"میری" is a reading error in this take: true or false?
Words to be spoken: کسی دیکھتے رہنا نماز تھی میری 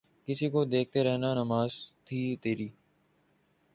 true